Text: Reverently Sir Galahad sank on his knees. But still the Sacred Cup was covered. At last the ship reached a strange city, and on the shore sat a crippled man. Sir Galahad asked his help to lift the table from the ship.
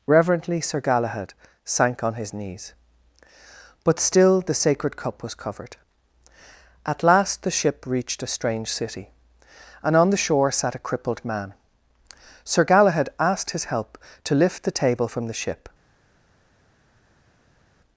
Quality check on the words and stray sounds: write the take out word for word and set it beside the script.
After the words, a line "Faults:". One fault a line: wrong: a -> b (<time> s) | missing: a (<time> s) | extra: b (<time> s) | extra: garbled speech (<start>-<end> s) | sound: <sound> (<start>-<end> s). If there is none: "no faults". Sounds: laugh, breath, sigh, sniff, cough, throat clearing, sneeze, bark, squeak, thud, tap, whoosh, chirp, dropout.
Reverently Sir Galahad sank on his knees. But still the Sacred Cup was covered. At last the ship reached a strange city, and on the shore sat a crippled man. Sir Galahad asked his help to lift the table from the ship.
Faults:
no faults